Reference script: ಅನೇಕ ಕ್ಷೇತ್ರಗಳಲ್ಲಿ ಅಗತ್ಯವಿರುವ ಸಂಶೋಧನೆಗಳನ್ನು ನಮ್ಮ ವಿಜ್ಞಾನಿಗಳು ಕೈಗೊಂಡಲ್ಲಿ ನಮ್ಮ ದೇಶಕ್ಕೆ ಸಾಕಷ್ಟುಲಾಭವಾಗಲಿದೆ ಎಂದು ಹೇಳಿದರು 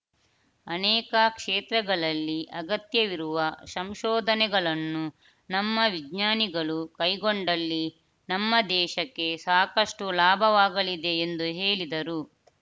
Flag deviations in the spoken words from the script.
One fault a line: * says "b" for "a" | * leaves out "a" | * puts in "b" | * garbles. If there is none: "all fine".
all fine